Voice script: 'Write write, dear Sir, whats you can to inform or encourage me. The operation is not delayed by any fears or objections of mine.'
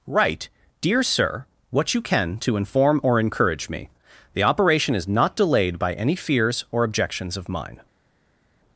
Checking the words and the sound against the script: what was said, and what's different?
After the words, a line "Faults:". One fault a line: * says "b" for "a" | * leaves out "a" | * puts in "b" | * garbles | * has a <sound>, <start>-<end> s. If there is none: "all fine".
'Write, dear Sir, what you can to inform or encourage me. The operation is not delayed by any fears or objections of mine.'
Faults:
* leaves out "write"
* says "what" for "whats"